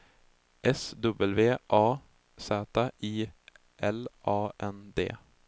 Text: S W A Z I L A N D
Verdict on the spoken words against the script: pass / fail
pass